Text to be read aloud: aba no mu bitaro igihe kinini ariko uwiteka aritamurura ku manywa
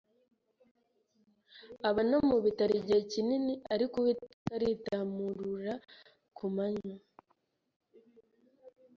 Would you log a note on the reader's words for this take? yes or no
no